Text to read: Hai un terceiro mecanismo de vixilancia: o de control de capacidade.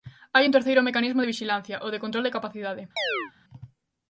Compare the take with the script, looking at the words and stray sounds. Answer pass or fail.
fail